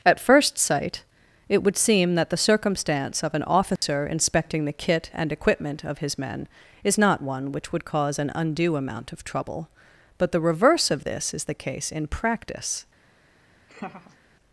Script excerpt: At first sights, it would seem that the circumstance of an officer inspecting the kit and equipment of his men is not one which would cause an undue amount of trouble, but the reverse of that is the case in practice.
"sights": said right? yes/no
no